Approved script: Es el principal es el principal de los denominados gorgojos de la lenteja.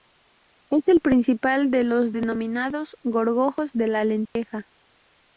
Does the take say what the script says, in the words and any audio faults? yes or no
no